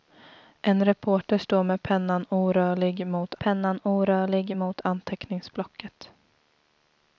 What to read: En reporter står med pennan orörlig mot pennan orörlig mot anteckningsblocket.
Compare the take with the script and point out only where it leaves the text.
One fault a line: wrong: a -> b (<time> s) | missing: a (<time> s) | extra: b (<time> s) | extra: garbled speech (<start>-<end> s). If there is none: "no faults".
no faults